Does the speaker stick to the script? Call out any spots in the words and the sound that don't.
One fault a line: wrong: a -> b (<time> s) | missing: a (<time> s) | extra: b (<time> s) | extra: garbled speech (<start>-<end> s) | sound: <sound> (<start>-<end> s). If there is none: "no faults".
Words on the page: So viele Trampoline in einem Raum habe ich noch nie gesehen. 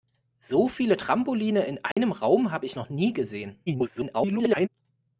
sound: dropout (1.9-2.0 s)
extra: garbled speech (3.7-4.7 s)